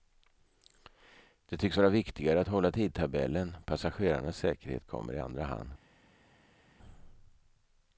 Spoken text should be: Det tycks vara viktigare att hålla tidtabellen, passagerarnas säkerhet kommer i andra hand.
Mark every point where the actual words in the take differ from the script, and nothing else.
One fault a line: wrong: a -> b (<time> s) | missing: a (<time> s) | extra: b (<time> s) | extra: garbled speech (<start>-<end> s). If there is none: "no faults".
no faults